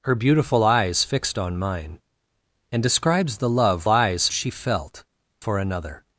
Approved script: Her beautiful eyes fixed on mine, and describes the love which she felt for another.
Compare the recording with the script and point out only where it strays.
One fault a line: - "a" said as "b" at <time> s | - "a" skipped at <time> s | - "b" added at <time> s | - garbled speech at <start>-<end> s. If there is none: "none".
- "which" said as "eyes" at 3.9 s